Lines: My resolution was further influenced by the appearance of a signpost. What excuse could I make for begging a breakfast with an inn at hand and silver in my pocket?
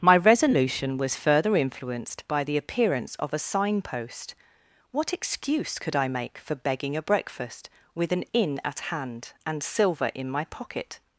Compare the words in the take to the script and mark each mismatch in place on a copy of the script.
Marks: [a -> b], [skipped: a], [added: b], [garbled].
My resolution was further influenced by the appearance of a signpost. What excuse could I make for begging a breakfast with an inn at hand and silver in my pocket?